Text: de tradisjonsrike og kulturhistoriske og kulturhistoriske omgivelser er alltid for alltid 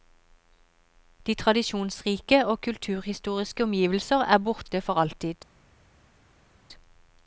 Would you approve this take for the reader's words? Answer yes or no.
no